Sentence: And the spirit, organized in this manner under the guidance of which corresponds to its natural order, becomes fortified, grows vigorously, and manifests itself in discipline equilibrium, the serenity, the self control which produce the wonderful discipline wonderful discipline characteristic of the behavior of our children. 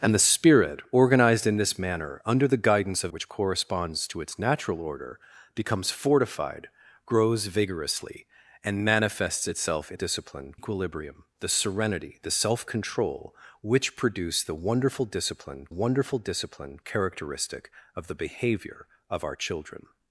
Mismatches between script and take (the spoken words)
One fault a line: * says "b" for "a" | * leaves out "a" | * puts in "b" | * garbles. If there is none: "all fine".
all fine